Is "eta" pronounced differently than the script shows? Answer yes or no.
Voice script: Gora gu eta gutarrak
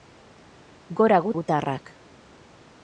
yes